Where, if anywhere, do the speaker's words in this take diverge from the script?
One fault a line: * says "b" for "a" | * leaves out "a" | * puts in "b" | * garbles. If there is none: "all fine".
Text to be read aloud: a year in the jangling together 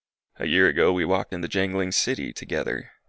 * puts in "ago we walked"
* puts in "city"